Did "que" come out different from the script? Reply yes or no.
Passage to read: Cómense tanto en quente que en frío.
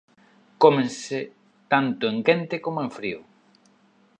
yes